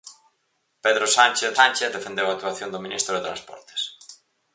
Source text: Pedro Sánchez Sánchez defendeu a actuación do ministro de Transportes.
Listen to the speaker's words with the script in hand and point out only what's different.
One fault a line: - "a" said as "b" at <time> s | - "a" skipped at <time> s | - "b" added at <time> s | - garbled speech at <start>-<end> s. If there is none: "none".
none